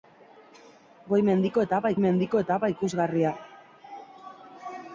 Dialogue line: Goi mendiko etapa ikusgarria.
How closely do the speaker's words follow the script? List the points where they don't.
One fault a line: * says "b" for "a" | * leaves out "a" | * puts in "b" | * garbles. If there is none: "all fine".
* puts in "mendiko etapa"